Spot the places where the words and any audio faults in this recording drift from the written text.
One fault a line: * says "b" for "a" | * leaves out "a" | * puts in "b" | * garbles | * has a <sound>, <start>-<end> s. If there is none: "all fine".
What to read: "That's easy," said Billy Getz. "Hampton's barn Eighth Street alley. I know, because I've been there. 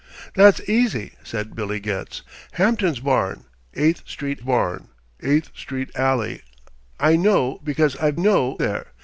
* puts in "barn Eighth Street"
* says "know" for "been"